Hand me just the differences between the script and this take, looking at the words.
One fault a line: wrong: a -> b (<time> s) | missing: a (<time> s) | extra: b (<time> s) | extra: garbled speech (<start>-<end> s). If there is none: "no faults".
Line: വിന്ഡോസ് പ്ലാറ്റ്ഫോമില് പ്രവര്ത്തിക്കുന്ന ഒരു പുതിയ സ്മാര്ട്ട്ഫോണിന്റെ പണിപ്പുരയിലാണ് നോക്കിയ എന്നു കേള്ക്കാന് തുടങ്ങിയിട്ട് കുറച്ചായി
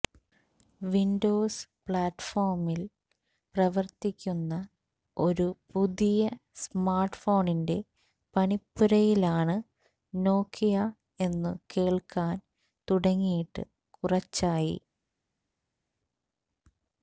no faults